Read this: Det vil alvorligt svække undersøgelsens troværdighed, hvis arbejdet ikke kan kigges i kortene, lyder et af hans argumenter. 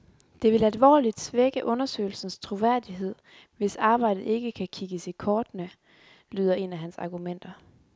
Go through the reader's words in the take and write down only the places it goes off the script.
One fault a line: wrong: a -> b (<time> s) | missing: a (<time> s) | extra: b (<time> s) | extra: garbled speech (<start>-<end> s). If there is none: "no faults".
no faults